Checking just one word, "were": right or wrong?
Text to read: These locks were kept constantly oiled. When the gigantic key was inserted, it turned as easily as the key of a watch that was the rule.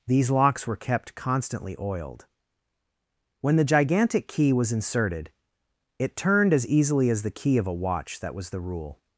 right